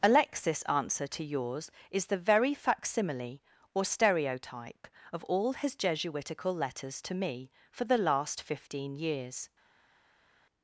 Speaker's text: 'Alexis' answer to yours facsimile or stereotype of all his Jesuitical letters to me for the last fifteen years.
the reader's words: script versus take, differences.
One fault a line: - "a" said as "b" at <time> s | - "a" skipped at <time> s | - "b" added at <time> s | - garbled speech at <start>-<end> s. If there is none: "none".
- "is the very" added at 1.9 s